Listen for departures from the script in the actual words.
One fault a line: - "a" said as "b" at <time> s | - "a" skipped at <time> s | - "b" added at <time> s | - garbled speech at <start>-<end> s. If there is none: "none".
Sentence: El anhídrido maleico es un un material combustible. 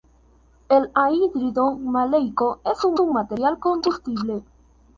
none